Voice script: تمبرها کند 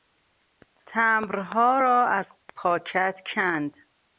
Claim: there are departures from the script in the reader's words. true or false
true